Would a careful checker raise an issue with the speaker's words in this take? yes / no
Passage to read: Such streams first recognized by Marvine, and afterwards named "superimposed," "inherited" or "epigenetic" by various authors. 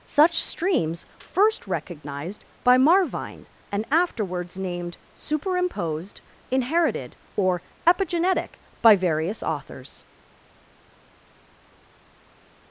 no